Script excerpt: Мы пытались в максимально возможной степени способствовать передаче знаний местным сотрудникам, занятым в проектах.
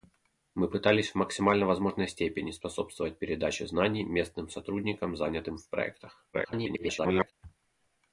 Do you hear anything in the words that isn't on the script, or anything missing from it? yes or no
yes